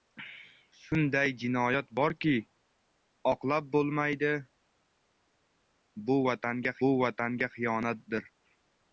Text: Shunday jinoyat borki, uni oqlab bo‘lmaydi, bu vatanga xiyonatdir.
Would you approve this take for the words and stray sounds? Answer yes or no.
no